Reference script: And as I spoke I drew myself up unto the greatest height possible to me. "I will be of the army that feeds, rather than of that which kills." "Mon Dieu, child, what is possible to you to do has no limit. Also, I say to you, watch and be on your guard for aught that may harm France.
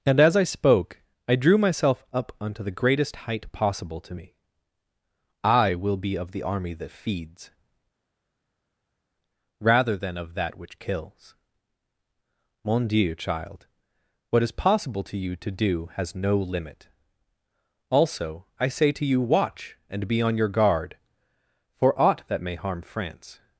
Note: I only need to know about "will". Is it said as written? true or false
true